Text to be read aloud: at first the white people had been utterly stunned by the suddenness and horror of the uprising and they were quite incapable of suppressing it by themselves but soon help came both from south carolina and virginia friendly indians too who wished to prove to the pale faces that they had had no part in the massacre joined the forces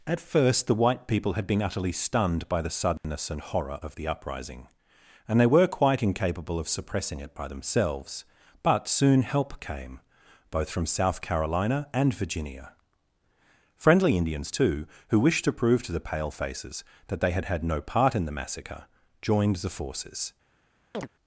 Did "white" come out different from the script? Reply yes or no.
no